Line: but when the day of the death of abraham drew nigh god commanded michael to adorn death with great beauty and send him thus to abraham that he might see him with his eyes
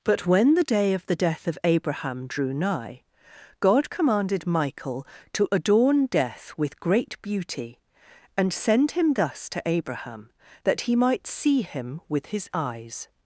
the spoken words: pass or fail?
pass